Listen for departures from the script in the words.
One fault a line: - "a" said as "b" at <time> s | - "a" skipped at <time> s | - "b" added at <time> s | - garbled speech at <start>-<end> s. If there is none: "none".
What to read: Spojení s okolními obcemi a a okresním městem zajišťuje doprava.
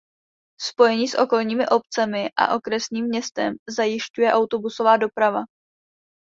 - "a" skipped at 2.5 s
- "autobusová" added at 4.3 s